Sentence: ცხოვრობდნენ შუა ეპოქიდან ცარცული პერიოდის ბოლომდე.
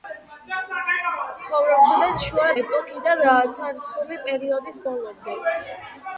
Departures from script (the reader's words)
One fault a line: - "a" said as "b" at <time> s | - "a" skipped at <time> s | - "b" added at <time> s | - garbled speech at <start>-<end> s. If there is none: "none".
none